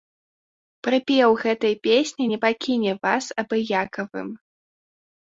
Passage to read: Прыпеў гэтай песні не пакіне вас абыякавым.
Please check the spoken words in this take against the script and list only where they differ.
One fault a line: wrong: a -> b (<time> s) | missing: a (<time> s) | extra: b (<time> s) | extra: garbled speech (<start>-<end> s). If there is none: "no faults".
no faults